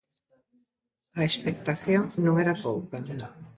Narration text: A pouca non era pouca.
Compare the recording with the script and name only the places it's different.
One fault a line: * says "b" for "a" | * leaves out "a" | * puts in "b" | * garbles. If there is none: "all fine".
* says "expectación" for "pouca"